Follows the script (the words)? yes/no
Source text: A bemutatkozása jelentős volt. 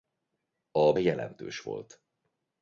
no